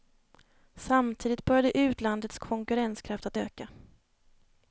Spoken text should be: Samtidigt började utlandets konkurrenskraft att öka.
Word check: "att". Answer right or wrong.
right